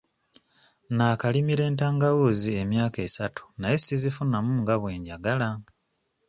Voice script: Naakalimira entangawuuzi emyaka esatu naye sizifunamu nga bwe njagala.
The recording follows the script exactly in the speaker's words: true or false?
true